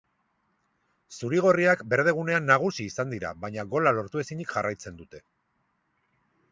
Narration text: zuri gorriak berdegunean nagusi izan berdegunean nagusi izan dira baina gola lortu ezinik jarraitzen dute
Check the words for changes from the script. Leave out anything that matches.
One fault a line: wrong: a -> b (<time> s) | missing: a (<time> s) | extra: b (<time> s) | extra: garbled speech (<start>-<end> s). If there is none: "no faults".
missing: berdegunean nagusi izan (3.1 s)